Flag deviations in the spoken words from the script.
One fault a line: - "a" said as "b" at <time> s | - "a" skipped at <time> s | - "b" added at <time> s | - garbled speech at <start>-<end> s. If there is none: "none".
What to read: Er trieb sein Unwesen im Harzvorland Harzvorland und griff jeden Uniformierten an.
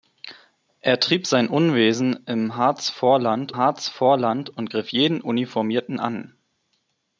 none